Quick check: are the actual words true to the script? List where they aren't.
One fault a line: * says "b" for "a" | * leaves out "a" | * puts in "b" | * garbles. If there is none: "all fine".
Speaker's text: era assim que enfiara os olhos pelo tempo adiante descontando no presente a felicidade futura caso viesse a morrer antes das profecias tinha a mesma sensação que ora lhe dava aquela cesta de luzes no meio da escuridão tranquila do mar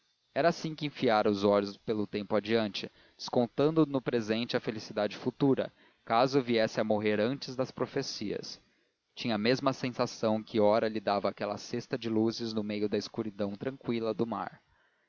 all fine